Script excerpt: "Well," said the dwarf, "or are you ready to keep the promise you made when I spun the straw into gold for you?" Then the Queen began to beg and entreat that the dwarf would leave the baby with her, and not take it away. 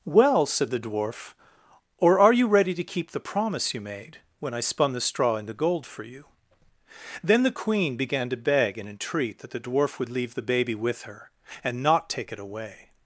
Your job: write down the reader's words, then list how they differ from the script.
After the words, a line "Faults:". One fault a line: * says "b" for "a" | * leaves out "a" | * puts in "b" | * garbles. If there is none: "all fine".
"Well," said the dwarf, "or are you ready to keep the promise you made when I spun the straw into gold for you?" Then the Queen began to beg and entreat that the dwarf would leave the baby with her, and not take it away.
Faults:
all fine